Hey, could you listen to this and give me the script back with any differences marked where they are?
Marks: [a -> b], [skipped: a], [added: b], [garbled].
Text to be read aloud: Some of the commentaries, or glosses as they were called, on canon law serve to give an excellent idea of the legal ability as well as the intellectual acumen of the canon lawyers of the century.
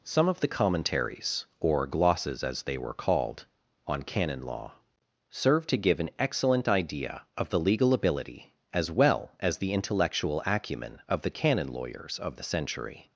Some of the commentaries, or glosses as they were called, on canon law serve to give an excellent idea of the legal ability as well as the intellectual acumen of the canon lawyers of the century.